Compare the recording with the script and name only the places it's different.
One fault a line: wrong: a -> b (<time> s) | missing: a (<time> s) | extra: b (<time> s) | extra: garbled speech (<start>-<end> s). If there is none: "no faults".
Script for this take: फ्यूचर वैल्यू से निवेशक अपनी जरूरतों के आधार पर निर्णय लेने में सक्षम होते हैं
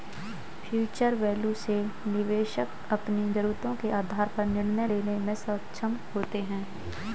no faults